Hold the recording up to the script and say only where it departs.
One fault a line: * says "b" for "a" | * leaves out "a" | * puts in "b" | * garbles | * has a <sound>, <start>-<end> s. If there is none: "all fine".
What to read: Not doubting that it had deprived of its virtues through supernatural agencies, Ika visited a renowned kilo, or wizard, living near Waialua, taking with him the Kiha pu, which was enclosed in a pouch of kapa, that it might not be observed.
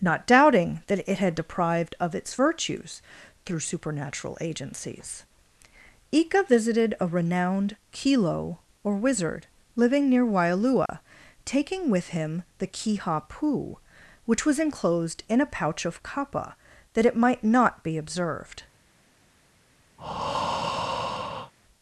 * has a dropout, 10.9-10.9 s
* has a breath, 20.0-21.5 s